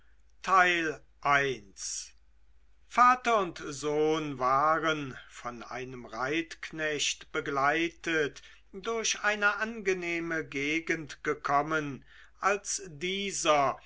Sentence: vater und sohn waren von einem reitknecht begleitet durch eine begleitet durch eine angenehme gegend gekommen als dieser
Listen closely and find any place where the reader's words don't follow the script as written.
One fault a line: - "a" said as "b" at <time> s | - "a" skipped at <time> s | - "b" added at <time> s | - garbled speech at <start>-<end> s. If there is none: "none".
- "begleitet durch eine" skipped at 9.6 s